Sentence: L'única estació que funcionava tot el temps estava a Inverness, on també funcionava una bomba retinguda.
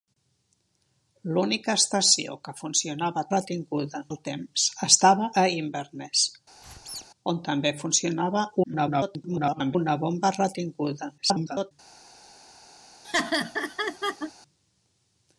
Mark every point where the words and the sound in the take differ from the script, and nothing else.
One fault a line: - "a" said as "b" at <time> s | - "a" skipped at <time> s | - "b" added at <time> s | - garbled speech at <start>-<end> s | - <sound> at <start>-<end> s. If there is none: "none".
- "tot" said as "retinguda" at 3.3 s
- squeak at 6.6-7.1 s
- garbled speech at 8.6-9.8 s
- garbled speech at 11.2-11.7 s
- laugh at 13.0-14.3 s